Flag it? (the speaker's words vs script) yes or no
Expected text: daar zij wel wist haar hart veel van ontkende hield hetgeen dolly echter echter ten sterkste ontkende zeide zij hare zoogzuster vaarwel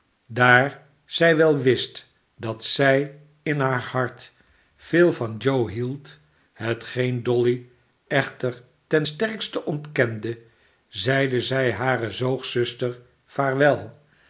yes